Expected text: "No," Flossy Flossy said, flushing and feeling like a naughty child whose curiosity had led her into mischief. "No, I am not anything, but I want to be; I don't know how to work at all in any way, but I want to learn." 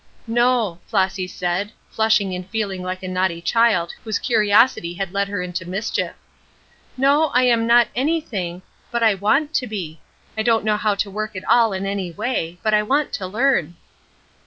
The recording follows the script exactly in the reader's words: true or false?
false